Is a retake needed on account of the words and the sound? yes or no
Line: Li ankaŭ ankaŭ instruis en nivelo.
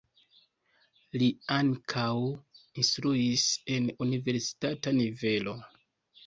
yes